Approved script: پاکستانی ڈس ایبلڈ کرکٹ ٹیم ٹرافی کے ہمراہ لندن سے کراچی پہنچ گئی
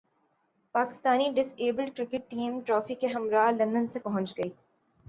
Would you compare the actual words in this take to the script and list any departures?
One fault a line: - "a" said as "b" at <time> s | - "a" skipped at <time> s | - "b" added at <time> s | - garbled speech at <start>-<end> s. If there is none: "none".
- "کراچی" skipped at 4.0 s